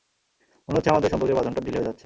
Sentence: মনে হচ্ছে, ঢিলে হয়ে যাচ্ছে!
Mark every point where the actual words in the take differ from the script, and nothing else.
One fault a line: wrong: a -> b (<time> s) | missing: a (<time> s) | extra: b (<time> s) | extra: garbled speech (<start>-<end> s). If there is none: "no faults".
extra: আমাদের সম্পর্কের বাঁধনটা (0.9 s)